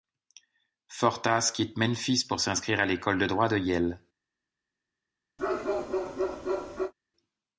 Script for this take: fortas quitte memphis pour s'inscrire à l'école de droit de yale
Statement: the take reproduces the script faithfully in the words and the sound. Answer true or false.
false